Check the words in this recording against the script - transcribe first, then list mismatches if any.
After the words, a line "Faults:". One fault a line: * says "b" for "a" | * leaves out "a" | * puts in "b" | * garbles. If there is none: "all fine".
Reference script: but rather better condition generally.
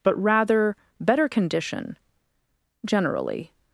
but rather better condition generally.
Faults:
all fine